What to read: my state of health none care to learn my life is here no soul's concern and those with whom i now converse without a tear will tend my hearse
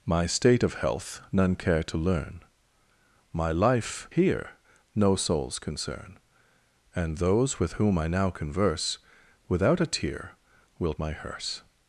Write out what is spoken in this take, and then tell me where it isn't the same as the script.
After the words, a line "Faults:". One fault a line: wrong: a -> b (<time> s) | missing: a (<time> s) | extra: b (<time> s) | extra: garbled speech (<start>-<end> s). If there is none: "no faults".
my state of health none care to learn my life here no soul's concern and those with whom i now converse without a tear will my hearse
Faults:
missing: is (4.1 s)
missing: tend (10.9 s)